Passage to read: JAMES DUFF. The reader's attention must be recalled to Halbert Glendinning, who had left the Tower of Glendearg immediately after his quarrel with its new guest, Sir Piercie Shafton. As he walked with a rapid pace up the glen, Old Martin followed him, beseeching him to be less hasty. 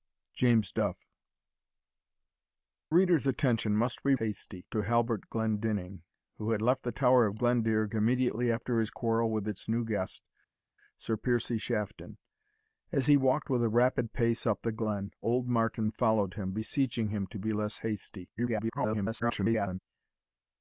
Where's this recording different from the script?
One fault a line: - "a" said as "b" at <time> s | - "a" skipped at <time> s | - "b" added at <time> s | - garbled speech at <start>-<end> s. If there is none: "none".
- "The" skipped at 1.0 s
- "recalled" said as "hasty" at 4.1 s
- garbled speech at 18.4-19.8 s